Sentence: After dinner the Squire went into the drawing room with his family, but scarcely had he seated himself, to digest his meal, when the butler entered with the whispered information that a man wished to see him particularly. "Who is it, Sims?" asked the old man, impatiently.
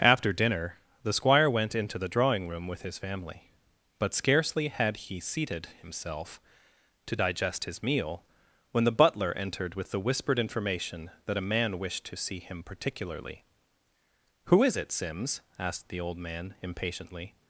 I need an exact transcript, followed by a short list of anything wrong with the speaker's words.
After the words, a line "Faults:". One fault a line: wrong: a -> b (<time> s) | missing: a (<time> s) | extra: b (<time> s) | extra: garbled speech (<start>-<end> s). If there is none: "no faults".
After dinner the Squire went into the drawing room with his family, but scarcely had he seated himself, to digest his meal, when the butler entered with the whispered information that a man wished to see him particularly. "Who is it, Sims?" asked the old man, impatiently.
Faults:
no faults